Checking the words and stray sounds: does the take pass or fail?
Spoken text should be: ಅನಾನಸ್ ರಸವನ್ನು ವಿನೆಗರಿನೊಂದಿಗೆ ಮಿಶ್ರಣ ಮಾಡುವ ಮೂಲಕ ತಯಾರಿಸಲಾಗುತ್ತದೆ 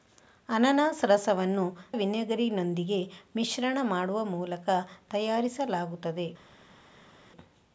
pass